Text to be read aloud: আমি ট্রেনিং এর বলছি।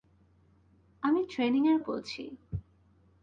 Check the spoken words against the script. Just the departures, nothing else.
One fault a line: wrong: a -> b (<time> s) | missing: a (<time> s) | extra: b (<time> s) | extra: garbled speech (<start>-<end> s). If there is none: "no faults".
no faults